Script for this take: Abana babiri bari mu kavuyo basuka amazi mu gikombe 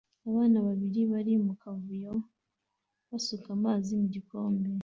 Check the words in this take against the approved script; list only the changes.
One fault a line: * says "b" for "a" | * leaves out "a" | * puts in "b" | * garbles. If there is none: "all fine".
all fine